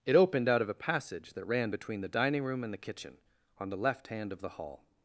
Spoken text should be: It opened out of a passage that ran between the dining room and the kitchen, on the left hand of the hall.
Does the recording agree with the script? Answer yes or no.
yes